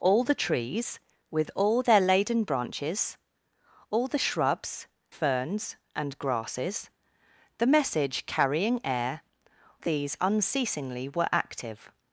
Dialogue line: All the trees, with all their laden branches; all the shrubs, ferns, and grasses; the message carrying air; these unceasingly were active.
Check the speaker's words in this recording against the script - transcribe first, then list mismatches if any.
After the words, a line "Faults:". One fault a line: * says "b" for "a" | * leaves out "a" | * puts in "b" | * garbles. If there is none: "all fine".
All the trees, with all their laden branches; all the shrubs, ferns, and grasses; the message carrying air; these unceasingly were active.
Faults:
all fine